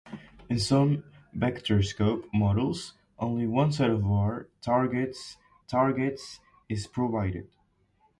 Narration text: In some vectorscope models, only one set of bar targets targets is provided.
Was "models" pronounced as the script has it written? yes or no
yes